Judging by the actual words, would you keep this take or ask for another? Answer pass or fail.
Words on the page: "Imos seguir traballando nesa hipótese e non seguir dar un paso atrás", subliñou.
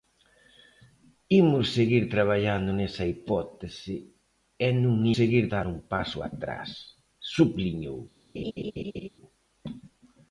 pass